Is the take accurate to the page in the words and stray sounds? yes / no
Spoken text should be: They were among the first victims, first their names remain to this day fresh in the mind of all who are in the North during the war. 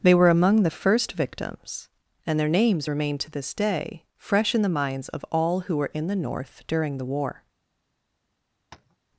no